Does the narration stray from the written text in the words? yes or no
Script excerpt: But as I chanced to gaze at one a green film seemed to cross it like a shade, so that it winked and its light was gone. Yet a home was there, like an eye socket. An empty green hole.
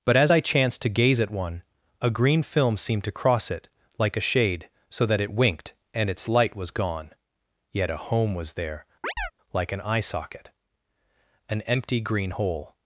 no